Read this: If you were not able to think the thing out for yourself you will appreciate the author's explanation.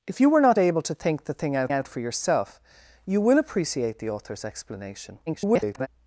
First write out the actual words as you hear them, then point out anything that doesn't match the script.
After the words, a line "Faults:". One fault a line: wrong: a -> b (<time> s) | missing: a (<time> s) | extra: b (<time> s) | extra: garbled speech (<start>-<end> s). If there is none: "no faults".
If you were not able to think the thing out out for yourself you will appreciate the author's explanation. [garbled]
Faults:
extra: out (1.7 s)
extra: garbled speech (5.3-5.9 s)